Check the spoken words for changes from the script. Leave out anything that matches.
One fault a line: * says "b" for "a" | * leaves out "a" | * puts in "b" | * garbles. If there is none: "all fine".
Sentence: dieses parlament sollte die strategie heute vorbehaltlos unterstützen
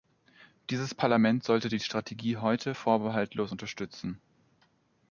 all fine